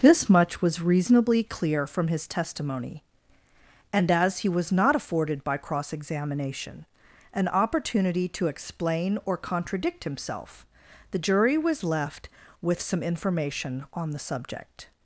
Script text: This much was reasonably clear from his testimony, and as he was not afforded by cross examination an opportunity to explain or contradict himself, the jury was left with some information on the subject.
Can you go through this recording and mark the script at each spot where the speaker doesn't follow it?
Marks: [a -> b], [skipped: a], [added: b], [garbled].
This much was reasonably clear from his testimony, and as he was not afforded by cross examination an opportunity to explain or contradict himself, the jury was left with some information on the subject.